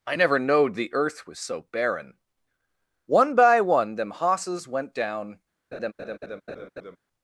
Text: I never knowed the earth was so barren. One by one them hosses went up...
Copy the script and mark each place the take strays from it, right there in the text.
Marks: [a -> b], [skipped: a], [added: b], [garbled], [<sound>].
I never knowed the earth was so barren. One by one them hosses went [up... -> down] [laugh]